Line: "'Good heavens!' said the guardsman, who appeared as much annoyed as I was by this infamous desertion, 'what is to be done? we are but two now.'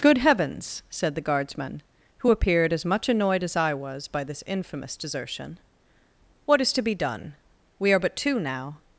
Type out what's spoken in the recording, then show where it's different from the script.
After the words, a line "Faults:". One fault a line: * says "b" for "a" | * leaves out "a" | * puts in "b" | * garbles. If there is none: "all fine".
"'Good heavens!' said the guardsman, who appeared as much annoyed as I was by this infamous desertion, 'what is to be done? we are but two now.'
Faults:
all fine